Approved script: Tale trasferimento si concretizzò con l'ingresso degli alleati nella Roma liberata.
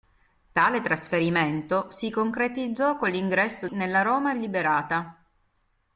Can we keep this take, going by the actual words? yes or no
no